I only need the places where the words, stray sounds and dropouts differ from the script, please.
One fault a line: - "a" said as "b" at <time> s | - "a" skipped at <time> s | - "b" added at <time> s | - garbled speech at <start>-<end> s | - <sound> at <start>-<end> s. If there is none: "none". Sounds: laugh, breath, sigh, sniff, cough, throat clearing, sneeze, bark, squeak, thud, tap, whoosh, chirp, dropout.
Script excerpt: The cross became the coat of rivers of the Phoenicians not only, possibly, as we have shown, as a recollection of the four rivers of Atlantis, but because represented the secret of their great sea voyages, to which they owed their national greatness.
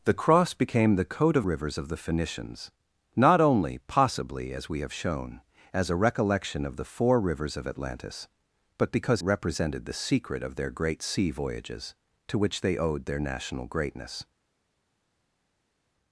none